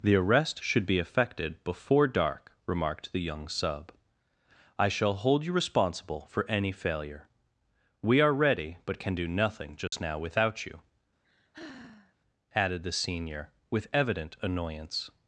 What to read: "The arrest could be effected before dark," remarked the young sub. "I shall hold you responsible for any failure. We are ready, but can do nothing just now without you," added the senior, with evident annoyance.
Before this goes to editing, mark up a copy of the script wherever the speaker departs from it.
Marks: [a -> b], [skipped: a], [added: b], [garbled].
"The arrest [could -> should] be effected before dark," remarked the young sub. "I shall hold you responsible for any failure. We are ready, but can do nothing just now without you," added the senior, with evident annoyance.